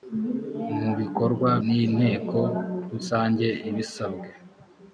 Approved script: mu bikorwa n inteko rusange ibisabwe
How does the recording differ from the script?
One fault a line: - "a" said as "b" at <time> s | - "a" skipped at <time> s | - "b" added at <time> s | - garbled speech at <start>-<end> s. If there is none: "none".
none